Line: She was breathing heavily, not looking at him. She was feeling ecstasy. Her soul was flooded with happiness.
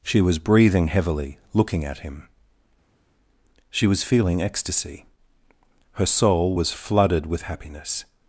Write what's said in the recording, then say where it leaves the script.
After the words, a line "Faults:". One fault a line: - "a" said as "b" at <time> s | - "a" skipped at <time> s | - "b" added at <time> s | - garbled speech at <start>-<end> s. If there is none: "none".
She was breathing heavily, looking at him. She was feeling ecstasy. Her soul was flooded with happiness.
Faults:
- "not" skipped at 1.4 s